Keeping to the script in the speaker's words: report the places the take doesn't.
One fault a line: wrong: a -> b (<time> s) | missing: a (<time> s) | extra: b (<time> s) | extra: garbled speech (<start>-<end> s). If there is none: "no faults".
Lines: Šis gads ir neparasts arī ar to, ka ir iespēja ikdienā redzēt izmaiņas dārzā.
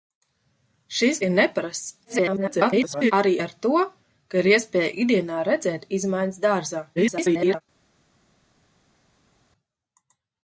missing: gads (1.2 s)
extra: garbled speech (2.0-3.1 s)
extra: garbled speech (7.0-7.6 s)